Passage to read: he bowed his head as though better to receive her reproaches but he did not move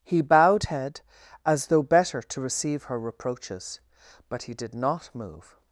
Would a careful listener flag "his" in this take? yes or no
yes